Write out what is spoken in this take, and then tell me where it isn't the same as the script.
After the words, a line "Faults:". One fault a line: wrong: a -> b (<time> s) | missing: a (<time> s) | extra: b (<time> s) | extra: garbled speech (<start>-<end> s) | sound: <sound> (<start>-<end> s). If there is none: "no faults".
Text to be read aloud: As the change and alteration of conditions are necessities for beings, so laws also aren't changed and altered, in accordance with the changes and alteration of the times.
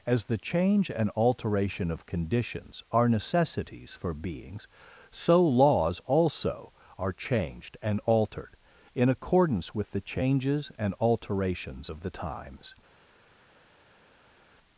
As the change and alteration of conditions are necessities for beings, so laws also are changed and altered, in accordance with the changes and alterations of the times.
Faults:
wrong: aren't -> are (7.0 s)
wrong: alteration -> alterations (11.0 s)